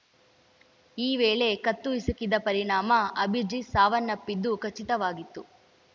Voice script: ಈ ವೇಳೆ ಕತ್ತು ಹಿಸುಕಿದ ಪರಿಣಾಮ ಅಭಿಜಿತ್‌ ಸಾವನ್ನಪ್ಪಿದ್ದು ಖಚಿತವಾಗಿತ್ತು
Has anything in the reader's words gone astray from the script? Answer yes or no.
no